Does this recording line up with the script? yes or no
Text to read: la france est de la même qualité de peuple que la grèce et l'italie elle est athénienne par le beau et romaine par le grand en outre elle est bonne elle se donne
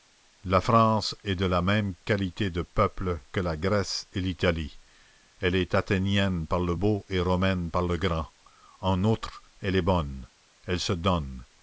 yes